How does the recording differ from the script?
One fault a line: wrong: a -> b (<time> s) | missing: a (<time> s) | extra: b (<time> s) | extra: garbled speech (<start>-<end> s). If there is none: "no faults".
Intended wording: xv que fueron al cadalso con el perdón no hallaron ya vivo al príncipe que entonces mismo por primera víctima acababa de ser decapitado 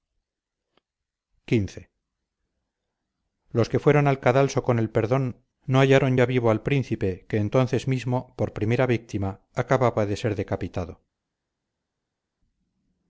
extra: los (3.5 s)